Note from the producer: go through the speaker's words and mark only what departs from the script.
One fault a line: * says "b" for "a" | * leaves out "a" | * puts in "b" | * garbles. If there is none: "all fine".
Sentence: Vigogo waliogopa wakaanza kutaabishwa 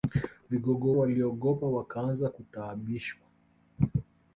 all fine